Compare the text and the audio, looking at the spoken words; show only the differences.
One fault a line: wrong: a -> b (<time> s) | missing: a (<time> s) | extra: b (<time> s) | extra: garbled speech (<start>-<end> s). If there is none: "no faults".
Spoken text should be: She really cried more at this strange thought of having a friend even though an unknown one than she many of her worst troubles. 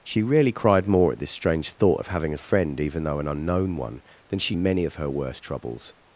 no faults